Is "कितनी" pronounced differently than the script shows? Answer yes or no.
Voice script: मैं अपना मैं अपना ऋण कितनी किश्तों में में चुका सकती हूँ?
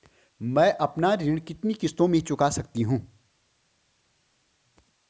no